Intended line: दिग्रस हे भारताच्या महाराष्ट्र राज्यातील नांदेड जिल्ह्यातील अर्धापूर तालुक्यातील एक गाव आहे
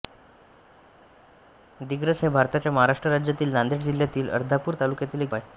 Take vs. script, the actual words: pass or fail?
fail